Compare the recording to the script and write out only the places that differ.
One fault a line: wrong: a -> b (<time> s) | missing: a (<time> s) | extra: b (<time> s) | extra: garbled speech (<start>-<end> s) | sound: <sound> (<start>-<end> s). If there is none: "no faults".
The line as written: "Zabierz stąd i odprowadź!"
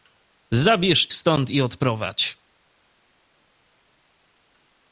no faults